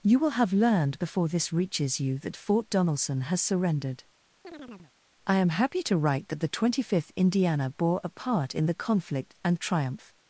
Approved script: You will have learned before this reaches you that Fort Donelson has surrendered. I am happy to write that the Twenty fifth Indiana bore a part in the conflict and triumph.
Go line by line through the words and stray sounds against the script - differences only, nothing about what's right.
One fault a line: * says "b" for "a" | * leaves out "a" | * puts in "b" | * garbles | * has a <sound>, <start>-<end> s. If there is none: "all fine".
* has a chirp, 4.4-4.9 s